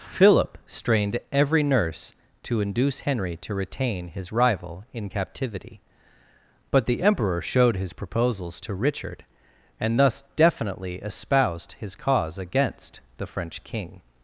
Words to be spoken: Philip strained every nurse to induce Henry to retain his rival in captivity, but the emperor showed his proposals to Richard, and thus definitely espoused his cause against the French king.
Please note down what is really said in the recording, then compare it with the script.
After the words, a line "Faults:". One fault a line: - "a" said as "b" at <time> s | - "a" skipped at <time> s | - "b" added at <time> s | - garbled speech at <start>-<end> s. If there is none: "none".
Philip strained every nurse to induce Henry to retain his rival in captivity, but the emperor showed his proposals to Richard, and thus definitely espoused his cause against the French king.
Faults:
none